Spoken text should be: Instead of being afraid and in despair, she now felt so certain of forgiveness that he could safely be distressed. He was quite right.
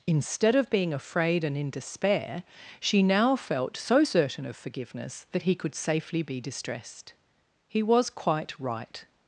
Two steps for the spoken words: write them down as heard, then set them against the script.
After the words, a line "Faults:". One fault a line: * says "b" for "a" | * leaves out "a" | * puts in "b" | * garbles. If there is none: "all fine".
Instead of being afraid and in despair, she now felt so certain of forgiveness that he could safely be distressed. He was quite right.
Faults:
all fine